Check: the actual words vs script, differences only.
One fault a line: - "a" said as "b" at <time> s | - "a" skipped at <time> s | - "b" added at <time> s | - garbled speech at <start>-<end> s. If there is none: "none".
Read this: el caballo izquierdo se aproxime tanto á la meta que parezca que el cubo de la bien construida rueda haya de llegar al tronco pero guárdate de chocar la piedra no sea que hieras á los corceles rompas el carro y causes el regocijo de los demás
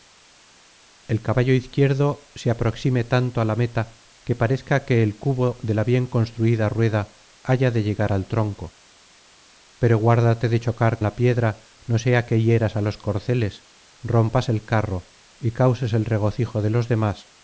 none